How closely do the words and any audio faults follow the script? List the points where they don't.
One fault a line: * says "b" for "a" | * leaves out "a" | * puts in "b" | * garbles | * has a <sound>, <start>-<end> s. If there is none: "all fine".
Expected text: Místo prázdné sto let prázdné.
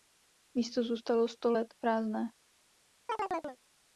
* says "zůstalo" for "prázdné"
* has a chirp, 3.1-3.6 s